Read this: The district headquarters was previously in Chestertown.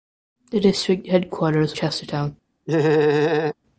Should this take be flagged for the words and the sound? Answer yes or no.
yes